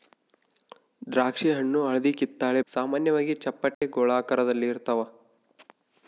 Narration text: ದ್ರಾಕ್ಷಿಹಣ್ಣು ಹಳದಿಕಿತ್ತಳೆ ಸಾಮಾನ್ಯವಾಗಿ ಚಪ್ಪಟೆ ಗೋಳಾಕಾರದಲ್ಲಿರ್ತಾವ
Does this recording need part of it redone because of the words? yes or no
no